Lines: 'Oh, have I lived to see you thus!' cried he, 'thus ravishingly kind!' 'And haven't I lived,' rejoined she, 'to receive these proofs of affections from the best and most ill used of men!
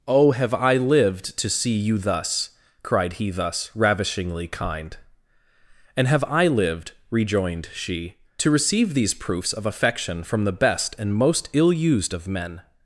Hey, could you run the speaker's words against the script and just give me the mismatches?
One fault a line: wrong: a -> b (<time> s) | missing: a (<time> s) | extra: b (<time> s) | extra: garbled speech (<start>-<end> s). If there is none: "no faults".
wrong: haven't -> have (6.1 s)
wrong: affections -> affection (9.7 s)